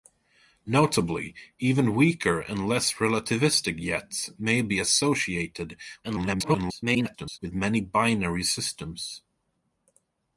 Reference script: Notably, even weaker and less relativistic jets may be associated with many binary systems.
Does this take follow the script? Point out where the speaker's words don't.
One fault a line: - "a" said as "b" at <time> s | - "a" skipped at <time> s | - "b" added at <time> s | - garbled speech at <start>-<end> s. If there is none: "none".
- garbled speech at 6.0-7.4 s